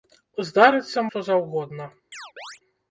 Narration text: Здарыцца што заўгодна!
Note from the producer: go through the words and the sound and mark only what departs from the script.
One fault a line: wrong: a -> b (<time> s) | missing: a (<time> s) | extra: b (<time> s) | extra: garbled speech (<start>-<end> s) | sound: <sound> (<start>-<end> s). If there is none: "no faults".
sound: chirp (2.1-2.6 s)